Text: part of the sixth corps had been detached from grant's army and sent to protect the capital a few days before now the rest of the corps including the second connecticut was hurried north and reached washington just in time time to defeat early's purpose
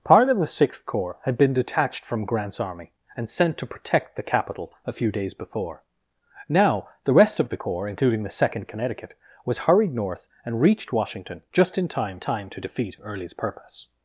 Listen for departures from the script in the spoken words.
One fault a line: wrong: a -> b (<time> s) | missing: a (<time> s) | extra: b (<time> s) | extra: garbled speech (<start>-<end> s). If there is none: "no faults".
no faults